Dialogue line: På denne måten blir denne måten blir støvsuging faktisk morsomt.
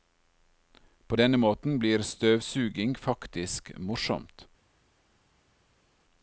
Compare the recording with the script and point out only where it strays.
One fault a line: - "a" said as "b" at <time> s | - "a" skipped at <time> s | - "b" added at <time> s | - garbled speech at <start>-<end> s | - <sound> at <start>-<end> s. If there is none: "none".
- "denne måten blir" skipped at 2.1 s